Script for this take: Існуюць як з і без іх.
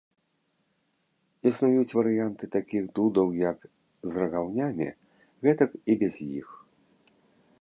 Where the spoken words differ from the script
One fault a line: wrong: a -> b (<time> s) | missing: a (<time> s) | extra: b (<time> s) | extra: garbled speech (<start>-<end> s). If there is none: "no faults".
extra: варыянты такіх дудаў (2.0 s)
extra: рагаўнямі гэтак (4.2 s)